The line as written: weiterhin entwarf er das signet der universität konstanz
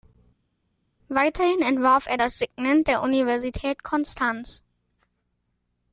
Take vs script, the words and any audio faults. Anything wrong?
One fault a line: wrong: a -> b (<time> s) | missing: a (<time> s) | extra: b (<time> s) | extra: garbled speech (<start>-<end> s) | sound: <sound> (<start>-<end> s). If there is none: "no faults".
no faults